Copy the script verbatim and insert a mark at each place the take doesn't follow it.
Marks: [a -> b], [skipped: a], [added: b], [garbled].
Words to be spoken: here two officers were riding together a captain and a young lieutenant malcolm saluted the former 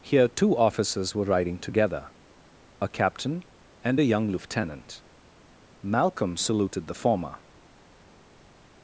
here two officers were riding together a captain and a young lieutenant malcolm saluted the former